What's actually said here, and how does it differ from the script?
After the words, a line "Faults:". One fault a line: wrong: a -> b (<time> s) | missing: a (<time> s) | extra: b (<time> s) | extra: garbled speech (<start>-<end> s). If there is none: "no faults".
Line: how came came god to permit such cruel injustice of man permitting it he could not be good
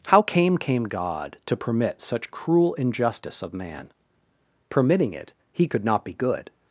how came came god to permit such cruel injustice of man permitting it he could not be good
Faults:
no faults